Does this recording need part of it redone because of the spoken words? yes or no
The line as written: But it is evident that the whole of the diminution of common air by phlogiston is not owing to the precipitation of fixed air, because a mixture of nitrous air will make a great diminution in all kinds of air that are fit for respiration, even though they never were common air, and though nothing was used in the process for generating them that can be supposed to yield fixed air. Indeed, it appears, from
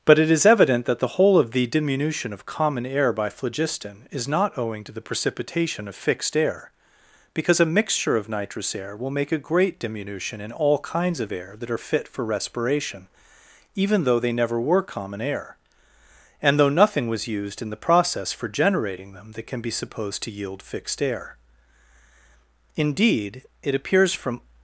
no